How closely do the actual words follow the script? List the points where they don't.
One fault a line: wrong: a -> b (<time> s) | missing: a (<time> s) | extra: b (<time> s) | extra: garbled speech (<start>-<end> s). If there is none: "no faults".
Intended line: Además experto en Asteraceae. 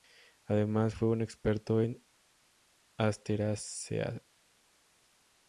extra: fue un (0.9 s)